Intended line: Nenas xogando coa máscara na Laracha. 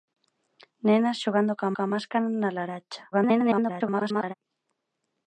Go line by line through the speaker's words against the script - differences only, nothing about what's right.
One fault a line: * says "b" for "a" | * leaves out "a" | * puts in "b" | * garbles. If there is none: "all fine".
* puts in "coa"
* garbles